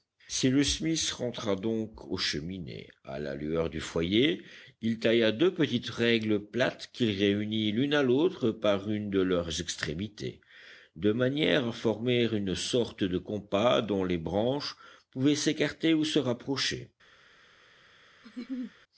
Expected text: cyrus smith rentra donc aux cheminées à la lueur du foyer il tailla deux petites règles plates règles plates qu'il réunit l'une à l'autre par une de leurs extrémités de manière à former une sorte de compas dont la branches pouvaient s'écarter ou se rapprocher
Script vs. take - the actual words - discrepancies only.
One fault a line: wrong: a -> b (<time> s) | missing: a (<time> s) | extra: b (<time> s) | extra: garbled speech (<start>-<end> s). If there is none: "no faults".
missing: règles plates (6.9 s)
wrong: la -> les (14.0 s)